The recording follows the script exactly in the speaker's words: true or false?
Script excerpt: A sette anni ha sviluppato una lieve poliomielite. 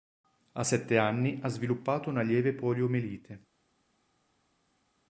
true